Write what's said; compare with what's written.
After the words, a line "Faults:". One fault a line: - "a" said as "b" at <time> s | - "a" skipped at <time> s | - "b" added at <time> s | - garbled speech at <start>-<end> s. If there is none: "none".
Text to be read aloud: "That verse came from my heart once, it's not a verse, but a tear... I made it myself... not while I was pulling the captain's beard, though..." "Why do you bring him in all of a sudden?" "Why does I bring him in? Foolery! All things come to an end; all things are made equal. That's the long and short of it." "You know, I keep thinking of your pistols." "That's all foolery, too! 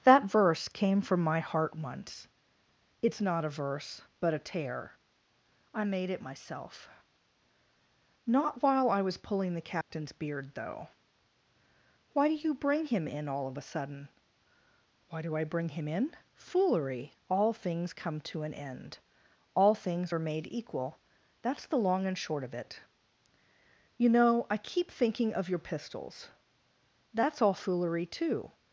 "That verse came from my heart once, it's not a verse, but a tear... I made it myself... not while I was pulling the captain's beard, though..." "Why do you bring him in all of a sudden?" "Why do I bring him in? Foolery! All things come to an end; all things are made equal. That's the long and short of it." "You know, I keep thinking of your pistols." "That's all foolery, too!
Faults:
- "does" said as "do" at 15.2 s